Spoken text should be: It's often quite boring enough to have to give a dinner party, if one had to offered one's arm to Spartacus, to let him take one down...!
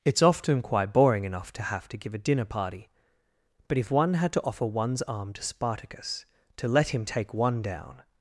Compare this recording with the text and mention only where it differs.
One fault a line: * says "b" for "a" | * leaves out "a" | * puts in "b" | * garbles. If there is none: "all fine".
* puts in "but"
* says "offer" for "offered"